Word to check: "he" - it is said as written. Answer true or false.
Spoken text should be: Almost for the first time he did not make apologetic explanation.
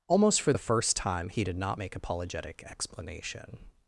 true